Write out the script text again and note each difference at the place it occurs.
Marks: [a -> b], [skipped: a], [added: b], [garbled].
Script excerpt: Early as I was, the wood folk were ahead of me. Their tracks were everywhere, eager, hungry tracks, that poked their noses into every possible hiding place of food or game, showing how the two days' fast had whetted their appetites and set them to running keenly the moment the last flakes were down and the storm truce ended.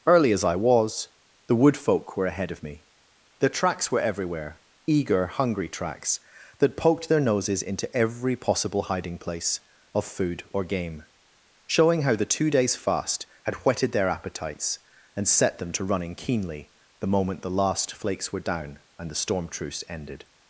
Early as I was, the wood folk were ahead of me. Their tracks were everywhere, eager, hungry tracks, that poked their noses into every possible hiding place of food or game, showing how the two days' fast had whetted their appetites and set them to running keenly the moment the last flakes were down and the storm truce ended.